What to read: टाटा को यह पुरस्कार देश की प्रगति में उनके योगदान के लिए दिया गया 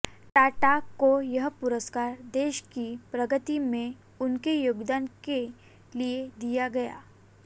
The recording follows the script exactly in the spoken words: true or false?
true